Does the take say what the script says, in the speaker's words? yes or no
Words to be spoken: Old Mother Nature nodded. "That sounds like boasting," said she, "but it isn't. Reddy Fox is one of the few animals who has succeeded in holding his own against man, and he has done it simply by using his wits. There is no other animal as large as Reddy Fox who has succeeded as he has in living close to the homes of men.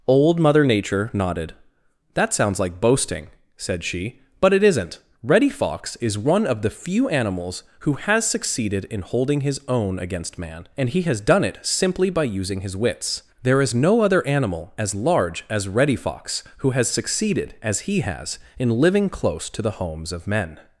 yes